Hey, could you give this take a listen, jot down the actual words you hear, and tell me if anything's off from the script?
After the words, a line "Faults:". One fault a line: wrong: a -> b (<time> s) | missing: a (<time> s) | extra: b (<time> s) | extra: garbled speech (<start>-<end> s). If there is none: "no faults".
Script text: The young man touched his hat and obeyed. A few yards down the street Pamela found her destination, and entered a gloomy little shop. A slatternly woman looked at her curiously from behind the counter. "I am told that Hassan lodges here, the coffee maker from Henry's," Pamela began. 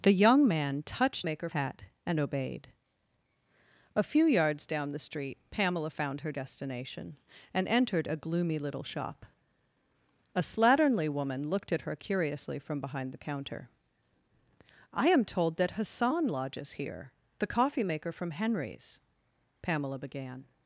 The young man touched maker hat and obeyed. A few yards down the street Pamela found her destination, and entered a gloomy little shop. A slatternly woman looked at her curiously from behind the counter. "I am told that Hassan lodges here, the coffee maker from Henry's," Pamela began.
Faults:
wrong: his -> maker (1.2 s)